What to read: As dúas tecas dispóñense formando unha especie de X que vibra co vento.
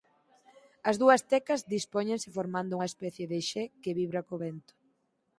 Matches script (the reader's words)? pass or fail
pass